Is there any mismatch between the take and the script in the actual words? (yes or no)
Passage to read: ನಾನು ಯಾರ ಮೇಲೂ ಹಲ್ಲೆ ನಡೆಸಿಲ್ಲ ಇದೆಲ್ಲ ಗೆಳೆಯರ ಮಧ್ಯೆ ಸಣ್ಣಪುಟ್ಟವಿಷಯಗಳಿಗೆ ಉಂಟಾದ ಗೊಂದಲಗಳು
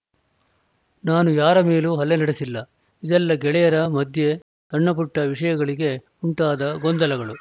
no